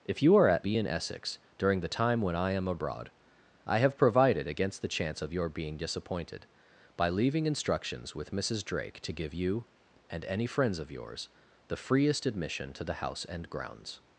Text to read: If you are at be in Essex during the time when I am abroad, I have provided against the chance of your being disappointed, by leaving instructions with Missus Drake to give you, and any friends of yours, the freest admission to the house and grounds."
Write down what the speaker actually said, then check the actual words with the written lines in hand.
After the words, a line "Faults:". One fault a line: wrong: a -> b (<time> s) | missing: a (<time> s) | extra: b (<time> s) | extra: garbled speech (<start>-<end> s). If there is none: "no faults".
If you are at be in Essex during the time when I am abroad, I have provided against the chance of your being disappointed, by leaving instructions with Missus Drake to give you, and any friends of yours, the freest admission to the house and grounds."
Faults:
no faults